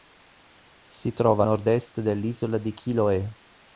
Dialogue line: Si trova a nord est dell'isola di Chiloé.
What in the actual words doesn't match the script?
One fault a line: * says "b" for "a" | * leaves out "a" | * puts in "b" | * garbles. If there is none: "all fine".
all fine